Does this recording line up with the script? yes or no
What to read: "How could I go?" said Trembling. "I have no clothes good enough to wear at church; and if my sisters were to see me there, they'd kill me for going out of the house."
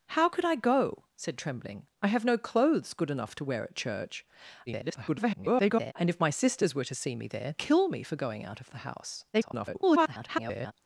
no